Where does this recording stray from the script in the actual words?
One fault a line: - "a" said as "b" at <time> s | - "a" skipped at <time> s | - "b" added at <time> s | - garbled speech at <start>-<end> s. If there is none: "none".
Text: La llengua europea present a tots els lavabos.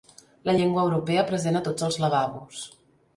none